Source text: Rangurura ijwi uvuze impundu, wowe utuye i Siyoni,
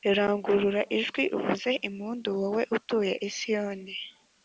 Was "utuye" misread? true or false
false